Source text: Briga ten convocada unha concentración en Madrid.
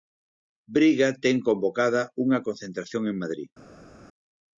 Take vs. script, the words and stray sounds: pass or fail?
pass